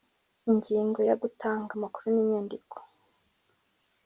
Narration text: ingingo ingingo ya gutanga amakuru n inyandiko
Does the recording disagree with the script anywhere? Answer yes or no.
yes